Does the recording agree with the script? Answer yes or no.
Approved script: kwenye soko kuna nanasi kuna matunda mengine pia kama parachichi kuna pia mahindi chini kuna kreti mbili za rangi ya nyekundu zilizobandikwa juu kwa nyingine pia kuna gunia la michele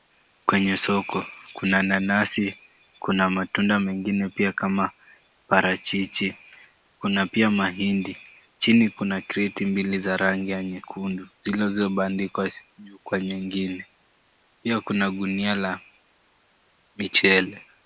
yes